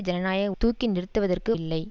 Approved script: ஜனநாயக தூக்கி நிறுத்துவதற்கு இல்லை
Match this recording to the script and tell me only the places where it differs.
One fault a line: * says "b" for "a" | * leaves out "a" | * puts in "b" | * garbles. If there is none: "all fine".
all fine